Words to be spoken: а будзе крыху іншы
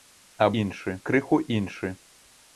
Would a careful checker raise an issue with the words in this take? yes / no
yes